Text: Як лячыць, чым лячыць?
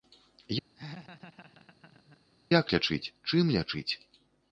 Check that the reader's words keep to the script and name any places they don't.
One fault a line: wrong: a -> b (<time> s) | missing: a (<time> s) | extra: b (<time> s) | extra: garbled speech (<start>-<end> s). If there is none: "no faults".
no faults